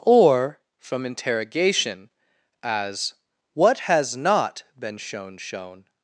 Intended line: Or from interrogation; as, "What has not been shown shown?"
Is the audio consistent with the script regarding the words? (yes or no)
yes